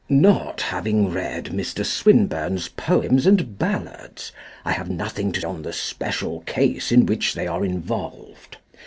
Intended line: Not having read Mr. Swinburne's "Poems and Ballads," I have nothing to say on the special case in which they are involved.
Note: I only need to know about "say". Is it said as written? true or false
false